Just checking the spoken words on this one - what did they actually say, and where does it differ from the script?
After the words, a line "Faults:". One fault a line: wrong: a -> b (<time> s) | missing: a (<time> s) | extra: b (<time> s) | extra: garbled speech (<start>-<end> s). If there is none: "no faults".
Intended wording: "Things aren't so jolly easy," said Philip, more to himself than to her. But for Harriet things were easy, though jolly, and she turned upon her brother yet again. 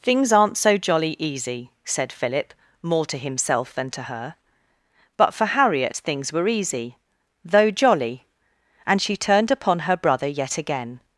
"Things aren't so jolly easy," said Philip, more to himself than to her. But for Harriet things were easy, though jolly, and she turned upon her brother yet again.
Faults:
no faults